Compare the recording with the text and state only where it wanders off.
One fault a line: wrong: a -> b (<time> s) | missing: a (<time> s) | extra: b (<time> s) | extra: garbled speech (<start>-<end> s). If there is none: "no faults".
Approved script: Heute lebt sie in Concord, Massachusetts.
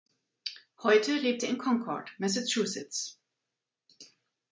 no faults